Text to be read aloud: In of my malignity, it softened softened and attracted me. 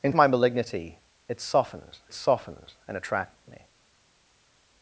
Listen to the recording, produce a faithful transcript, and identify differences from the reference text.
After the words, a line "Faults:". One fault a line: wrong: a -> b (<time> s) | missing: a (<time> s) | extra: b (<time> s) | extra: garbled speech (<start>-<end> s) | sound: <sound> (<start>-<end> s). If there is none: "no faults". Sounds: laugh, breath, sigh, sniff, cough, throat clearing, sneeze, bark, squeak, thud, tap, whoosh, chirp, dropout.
In of my malignity, it softened softened and attracted me.
Faults:
no faults